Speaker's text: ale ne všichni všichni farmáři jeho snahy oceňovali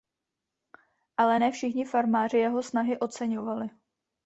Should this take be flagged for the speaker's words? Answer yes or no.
yes